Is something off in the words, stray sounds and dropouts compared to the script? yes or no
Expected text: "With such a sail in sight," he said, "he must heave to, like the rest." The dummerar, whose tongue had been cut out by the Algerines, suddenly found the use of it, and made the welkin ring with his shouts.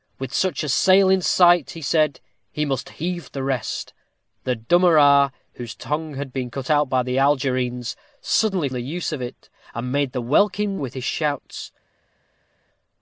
yes